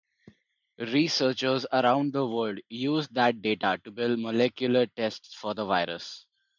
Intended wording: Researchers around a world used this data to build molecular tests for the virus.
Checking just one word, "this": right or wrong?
wrong